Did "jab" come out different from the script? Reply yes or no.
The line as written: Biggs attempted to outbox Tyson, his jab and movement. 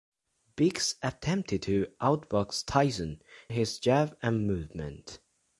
no